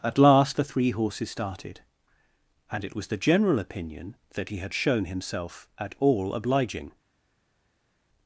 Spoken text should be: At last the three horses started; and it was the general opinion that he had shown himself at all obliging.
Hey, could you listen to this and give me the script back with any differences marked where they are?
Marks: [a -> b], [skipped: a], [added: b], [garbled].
At last the three horses started; and it was the general opinion that he had shown himself at all obliging.